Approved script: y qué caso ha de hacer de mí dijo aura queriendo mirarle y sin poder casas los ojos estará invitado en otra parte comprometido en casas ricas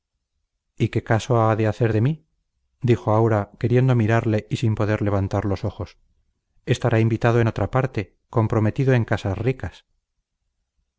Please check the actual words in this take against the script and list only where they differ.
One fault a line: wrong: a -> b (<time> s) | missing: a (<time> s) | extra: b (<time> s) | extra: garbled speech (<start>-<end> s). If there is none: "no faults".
wrong: casas -> levantar (5.0 s)